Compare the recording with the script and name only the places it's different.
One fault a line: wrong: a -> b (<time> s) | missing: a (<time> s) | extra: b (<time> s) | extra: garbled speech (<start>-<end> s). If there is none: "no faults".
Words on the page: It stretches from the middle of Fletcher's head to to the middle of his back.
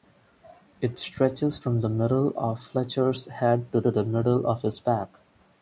no faults